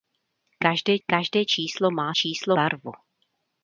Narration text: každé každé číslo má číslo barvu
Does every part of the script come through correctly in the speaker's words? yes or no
yes